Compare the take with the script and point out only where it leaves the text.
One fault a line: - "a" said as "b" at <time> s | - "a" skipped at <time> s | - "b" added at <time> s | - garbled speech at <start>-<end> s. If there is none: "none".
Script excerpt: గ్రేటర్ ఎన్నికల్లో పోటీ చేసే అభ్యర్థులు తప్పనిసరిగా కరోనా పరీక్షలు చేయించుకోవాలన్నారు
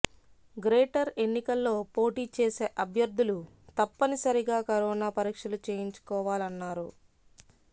none